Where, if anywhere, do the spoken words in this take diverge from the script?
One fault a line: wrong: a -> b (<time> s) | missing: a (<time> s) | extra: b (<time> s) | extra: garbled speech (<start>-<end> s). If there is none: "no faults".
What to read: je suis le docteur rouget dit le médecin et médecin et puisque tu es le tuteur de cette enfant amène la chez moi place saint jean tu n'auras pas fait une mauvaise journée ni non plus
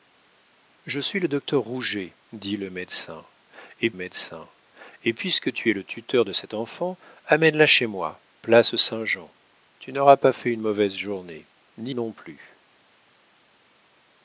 no faults